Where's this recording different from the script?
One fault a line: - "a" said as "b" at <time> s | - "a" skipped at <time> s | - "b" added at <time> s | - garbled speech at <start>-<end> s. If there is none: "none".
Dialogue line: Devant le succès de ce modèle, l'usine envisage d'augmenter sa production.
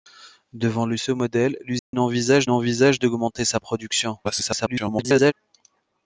- "succès de" skipped at 1.0 s
- "envisage" added at 2.5 s
- garbled speech at 4.2-5.3 s